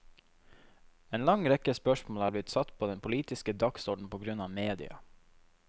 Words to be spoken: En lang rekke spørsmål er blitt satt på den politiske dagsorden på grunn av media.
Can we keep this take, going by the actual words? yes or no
yes